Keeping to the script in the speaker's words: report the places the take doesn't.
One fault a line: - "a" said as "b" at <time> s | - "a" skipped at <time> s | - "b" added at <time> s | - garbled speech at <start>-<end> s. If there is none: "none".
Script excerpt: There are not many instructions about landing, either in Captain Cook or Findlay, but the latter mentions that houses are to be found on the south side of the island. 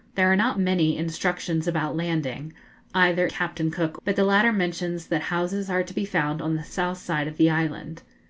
- "in" skipped at 3.3 s
- "or Findlay" skipped at 4.0 s